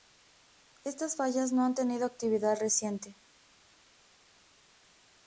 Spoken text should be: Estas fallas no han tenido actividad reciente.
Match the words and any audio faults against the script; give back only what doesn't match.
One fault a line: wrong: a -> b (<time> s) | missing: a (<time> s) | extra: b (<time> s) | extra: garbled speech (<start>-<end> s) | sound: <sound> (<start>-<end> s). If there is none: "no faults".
no faults